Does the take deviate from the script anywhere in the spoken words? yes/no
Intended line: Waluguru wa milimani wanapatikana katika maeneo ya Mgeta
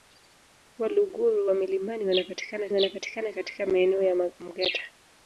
yes